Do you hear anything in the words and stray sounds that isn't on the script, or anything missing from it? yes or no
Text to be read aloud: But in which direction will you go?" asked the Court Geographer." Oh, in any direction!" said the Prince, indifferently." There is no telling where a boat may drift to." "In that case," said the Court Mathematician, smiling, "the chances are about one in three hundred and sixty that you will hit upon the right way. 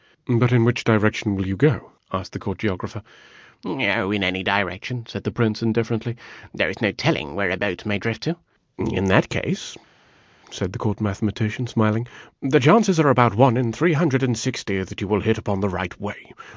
no